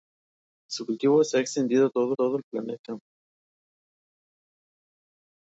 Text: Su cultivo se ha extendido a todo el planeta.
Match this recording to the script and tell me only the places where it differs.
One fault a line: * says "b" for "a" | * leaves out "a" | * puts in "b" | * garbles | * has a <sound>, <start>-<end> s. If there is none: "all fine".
* puts in "todo"